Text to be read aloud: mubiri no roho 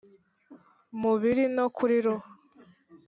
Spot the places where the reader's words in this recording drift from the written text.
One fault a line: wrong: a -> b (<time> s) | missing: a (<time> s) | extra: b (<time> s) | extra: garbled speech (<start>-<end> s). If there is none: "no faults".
extra: kuri (1.7 s)